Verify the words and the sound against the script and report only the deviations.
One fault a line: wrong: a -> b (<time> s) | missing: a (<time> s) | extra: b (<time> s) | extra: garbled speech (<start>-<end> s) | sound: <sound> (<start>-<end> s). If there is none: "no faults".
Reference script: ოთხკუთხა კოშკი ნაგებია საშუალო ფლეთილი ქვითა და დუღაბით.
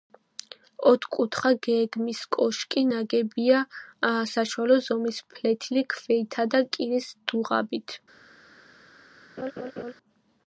extra: გეგმის (1.7 s)
extra: ზომის (4.9 s)
extra: კირის (6.8 s)
sound: laugh (9.4-9.9 s)